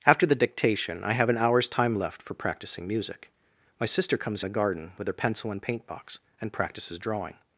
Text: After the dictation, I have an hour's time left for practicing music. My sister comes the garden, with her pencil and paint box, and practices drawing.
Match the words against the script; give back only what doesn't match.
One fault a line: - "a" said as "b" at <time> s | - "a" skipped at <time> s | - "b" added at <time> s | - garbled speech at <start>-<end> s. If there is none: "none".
none